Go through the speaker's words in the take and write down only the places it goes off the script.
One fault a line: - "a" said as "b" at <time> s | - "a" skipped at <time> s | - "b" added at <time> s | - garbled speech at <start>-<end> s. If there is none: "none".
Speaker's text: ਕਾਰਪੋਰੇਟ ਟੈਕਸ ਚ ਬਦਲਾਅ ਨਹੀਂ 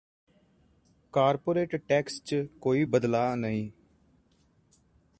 - "ਕੋਈ" added at 2.6 s